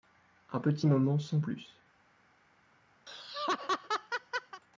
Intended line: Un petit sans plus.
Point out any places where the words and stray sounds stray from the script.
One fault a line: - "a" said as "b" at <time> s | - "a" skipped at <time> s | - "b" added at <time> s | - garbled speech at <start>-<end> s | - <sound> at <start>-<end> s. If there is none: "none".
- "moment" added at 0.8 s
- laugh at 3.1-4.6 s